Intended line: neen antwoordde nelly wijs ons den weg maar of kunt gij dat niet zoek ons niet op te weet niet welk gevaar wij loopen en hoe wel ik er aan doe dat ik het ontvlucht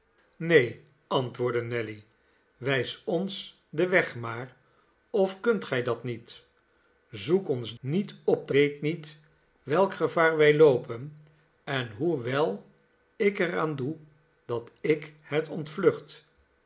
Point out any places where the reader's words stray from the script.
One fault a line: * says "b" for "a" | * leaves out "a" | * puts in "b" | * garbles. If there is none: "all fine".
all fine